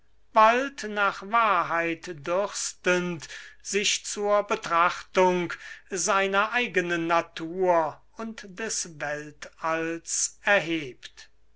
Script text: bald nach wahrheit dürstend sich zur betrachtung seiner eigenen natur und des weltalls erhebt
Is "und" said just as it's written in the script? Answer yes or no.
yes